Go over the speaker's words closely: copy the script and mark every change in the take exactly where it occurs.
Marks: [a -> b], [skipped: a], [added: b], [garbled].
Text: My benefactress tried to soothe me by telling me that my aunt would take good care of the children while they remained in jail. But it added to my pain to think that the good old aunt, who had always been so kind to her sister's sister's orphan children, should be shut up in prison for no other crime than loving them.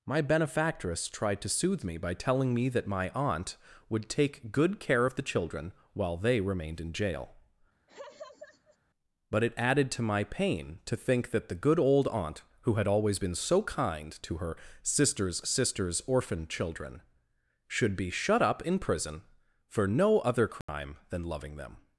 My benefactress tried to soothe me by telling me that my aunt would take good care of the children while they remained in jail. But it added to my pain to think that the good old aunt, who had always been so kind to her sister's sister's orphan children, should be shut up in prison for no other crime than loving them.